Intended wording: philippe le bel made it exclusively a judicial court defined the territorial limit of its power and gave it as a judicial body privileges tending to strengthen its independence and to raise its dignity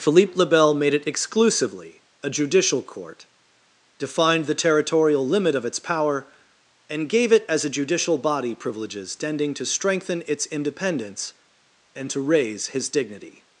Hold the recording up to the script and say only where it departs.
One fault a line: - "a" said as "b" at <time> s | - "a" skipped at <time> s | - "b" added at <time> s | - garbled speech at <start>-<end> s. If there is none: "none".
- "its" said as "his" at 12.7 s